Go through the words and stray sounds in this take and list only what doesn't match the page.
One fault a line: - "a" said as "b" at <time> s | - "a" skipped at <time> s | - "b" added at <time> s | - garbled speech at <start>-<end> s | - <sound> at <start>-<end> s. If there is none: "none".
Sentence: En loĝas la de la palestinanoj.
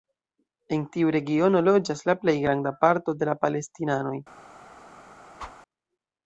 - "tiu regiono" added at 0.9 s
- "plej granda parto" added at 2.2 s
- whoosh at 5.4-5.6 s